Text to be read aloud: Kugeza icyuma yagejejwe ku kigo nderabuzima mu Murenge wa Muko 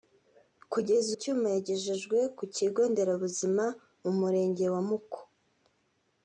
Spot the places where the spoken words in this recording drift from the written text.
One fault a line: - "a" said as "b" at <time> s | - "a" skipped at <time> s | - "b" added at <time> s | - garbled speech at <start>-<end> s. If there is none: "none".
none